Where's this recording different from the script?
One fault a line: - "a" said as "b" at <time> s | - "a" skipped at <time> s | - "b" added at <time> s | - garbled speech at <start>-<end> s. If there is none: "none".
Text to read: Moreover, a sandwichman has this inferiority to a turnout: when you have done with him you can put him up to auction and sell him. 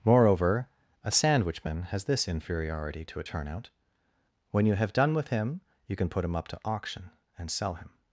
none